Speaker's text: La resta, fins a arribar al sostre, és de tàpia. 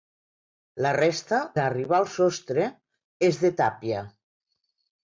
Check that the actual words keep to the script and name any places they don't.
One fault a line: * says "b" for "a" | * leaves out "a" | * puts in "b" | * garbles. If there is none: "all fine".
* leaves out "fins"